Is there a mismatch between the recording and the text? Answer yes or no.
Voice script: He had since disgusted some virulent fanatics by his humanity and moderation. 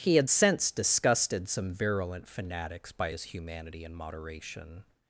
no